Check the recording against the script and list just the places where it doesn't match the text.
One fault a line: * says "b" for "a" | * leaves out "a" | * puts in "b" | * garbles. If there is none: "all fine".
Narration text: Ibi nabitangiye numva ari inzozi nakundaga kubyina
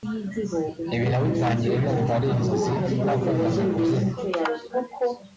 all fine